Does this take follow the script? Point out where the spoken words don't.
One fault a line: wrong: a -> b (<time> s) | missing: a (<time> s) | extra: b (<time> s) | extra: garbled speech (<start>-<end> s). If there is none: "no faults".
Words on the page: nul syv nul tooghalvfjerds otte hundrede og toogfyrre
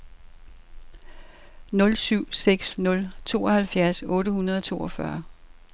extra: seks (2.3 s)